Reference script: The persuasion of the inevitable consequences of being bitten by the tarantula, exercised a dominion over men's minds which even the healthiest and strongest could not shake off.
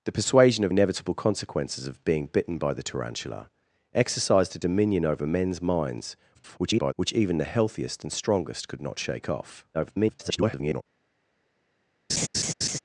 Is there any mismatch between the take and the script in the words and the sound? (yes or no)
yes